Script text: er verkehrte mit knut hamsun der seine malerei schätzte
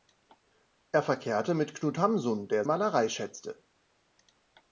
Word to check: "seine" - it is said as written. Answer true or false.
false